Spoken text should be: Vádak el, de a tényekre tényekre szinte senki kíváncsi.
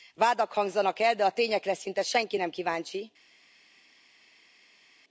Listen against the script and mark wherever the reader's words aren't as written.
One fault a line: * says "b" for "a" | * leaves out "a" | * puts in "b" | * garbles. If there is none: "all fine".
* puts in "hangzanak"
* leaves out "tényekre"
* puts in "nem"